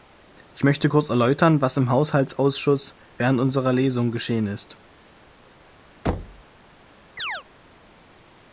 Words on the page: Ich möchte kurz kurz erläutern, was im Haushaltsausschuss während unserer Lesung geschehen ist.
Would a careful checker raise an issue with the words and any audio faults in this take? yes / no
yes